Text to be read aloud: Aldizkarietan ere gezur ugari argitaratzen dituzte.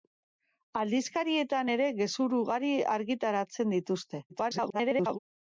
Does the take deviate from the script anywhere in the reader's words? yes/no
yes